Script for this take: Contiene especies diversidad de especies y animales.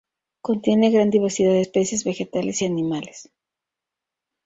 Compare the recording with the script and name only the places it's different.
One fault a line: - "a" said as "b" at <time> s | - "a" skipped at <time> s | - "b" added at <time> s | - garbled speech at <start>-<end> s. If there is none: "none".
- "especies" said as "gran" at 0.9 s
- "vegetales" added at 2.0 s